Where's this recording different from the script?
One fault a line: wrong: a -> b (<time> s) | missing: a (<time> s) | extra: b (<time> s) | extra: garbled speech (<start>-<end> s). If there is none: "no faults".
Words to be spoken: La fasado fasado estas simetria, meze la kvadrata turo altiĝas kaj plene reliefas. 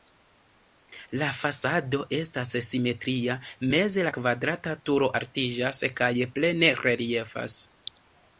missing: fasado (2.0 s)